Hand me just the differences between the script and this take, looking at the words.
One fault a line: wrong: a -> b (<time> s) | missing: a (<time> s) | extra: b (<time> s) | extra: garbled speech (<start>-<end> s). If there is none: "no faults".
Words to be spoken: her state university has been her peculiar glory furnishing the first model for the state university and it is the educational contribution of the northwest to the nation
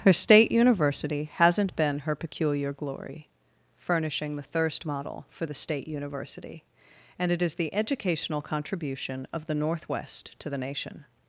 wrong: has -> hasn't (1.4 s)
wrong: first -> thirst (4.4 s)